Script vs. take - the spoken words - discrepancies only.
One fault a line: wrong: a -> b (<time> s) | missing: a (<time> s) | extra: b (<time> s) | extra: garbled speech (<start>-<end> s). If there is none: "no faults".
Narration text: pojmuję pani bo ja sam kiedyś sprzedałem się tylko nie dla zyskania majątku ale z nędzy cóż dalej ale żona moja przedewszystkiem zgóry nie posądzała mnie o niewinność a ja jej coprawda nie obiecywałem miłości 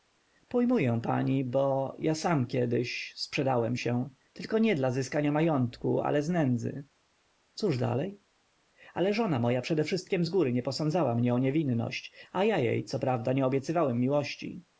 no faults